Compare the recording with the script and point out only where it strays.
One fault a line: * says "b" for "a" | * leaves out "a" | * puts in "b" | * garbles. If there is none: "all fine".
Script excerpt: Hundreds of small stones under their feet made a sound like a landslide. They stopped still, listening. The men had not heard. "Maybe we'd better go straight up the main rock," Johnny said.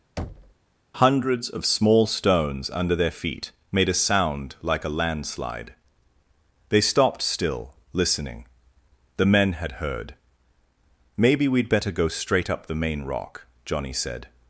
* leaves out "not"